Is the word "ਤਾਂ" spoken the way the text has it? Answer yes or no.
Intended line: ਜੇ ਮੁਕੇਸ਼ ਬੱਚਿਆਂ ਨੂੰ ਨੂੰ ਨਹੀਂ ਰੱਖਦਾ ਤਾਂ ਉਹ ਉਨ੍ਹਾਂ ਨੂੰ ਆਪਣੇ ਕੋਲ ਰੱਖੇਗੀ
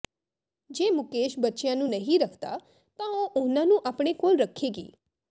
yes